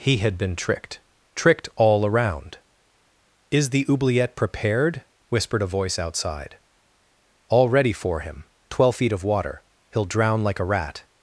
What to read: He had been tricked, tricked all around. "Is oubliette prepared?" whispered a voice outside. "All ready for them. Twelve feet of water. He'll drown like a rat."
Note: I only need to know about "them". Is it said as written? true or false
false